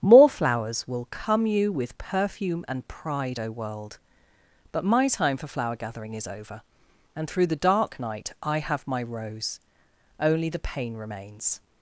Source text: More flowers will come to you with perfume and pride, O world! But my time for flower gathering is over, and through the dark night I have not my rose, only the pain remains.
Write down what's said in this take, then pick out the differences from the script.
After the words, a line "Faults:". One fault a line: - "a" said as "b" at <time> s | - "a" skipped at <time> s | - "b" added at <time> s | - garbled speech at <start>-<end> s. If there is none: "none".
More flowers will come you with perfume and pride, O world! But my time for flower gathering is over, and through the dark night I have my rose, only the pain remains.
Faults:
- "to" skipped at 1.4 s
- "not" skipped at 8.9 s